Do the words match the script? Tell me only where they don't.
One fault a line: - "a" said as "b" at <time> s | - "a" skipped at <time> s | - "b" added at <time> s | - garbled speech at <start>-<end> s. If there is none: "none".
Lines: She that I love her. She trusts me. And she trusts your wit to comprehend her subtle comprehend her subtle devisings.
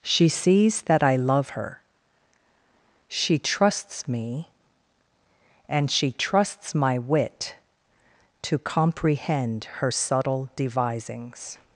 - "sees" added at 0.3 s
- "your" said as "my" at 6.7 s
- "comprehend her subtle" skipped at 10.5 s